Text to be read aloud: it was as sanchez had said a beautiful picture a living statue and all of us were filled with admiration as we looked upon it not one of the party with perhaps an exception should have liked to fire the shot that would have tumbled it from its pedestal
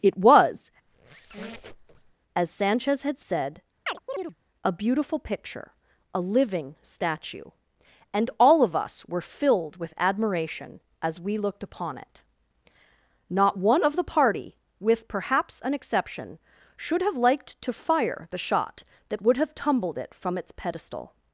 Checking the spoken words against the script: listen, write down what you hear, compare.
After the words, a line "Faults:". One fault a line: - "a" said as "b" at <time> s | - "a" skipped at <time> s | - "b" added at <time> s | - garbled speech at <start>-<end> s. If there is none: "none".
it was as sanchez had said a beautiful picture a living statue and all of us were filled with admiration as we looked upon it not one of the party with perhaps an exception should have liked to fire the shot that would have tumbled it from its pedestal
Faults:
none